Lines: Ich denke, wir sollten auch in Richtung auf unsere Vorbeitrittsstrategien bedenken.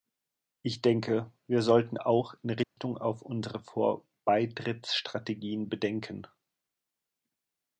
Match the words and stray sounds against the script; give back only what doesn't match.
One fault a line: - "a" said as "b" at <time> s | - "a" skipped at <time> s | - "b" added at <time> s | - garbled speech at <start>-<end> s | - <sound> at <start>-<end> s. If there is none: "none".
- dropout at 2.6-2.8 s